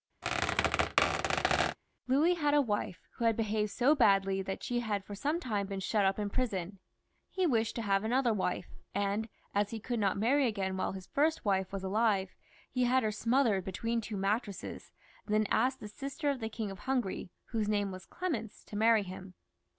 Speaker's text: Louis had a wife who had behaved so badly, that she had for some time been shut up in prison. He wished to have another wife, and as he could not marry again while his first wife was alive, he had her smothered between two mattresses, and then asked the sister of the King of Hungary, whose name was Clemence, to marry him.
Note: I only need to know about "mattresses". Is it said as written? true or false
true